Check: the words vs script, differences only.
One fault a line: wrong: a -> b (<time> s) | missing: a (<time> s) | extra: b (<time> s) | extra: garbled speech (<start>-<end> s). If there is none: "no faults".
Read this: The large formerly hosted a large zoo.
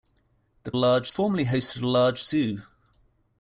no faults